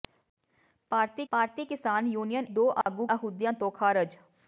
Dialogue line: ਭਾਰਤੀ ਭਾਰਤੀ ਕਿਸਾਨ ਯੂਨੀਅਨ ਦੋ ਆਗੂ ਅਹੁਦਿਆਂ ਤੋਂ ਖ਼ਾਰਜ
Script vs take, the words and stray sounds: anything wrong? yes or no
yes